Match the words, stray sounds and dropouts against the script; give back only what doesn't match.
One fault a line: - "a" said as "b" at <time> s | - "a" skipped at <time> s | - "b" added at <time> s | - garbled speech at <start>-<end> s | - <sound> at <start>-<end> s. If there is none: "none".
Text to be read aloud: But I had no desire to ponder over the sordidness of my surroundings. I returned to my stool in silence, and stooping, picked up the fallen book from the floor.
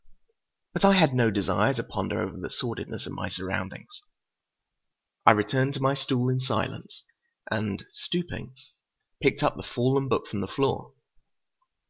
none